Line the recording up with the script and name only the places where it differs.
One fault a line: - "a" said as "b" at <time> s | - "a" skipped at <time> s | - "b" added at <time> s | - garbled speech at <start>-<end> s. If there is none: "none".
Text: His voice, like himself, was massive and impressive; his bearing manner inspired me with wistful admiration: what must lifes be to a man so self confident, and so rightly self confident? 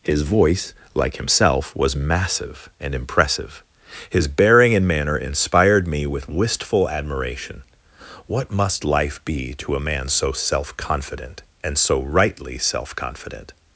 - "and" added at 4.7 s
- "lifes" said as "life" at 8.8 s